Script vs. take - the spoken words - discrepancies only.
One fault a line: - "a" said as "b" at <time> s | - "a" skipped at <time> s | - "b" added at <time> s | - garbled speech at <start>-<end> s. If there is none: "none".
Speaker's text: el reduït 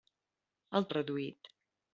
none